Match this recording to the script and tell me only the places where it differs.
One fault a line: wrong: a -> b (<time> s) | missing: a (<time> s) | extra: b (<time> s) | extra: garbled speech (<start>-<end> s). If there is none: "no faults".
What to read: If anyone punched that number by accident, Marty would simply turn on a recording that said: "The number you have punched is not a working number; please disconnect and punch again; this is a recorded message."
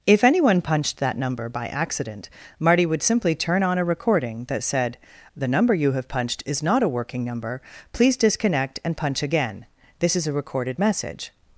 no faults